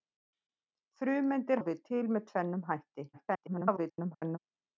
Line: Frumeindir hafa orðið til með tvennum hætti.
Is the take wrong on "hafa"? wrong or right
wrong